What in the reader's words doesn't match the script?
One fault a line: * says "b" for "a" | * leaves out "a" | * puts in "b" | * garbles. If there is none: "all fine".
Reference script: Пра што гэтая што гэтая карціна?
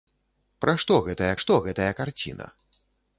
all fine